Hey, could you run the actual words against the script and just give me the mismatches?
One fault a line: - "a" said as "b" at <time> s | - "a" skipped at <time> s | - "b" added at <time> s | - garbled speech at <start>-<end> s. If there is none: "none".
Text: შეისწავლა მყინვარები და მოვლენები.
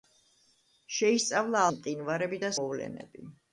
none